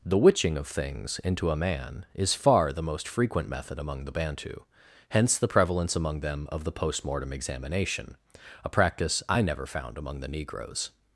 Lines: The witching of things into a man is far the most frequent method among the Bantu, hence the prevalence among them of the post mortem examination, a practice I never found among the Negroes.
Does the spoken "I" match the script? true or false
true